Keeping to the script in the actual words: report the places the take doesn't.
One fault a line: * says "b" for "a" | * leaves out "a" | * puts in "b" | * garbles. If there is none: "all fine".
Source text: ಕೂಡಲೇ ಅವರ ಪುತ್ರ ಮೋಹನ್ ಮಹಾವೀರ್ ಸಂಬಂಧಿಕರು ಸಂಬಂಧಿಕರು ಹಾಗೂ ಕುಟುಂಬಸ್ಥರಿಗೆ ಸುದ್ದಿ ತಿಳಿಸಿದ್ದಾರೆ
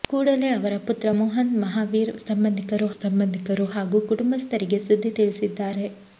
all fine